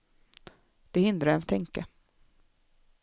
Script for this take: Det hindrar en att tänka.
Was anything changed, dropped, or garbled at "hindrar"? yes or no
no